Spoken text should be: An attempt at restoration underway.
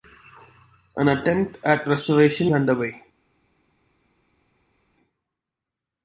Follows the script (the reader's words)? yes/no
yes